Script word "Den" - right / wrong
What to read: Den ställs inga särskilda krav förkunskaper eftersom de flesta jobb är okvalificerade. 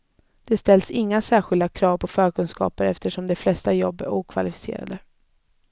wrong